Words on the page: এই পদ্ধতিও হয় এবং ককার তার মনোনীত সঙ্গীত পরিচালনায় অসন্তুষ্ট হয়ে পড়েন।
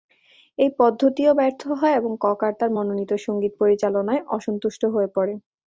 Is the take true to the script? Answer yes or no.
no